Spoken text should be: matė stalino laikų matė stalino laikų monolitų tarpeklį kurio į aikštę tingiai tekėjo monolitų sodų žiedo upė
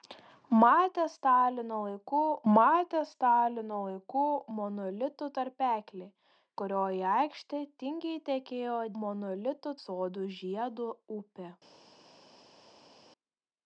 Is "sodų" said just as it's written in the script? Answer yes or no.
yes